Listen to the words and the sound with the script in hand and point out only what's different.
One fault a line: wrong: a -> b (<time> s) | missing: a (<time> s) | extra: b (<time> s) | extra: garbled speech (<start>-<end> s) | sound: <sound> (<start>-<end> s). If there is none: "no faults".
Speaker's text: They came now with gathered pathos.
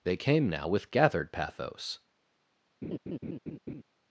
sound: laugh (2.8-3.8 s)